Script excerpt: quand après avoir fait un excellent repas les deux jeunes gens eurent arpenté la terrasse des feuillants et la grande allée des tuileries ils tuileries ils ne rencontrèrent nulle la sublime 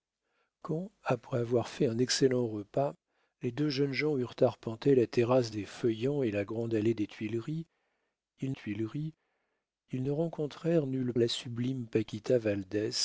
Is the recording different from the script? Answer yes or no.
no